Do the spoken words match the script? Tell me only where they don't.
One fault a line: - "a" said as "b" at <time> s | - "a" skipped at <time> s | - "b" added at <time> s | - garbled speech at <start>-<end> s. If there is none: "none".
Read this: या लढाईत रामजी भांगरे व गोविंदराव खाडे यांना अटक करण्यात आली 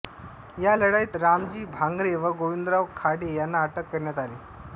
none